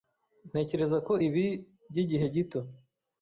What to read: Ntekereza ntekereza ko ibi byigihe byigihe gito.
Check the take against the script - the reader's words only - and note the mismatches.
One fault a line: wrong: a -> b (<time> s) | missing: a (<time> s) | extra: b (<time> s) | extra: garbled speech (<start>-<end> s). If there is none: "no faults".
missing: ntekereza (1.0 s)
missing: byigihe (2.2 s)